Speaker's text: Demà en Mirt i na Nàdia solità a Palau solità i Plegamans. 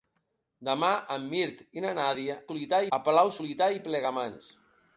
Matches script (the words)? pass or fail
pass